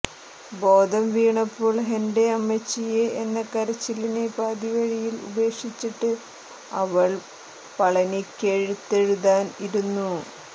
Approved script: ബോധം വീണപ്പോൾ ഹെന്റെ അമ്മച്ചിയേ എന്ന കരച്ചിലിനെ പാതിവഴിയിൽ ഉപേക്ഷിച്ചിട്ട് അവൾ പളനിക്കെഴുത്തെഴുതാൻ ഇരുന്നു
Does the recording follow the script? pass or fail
pass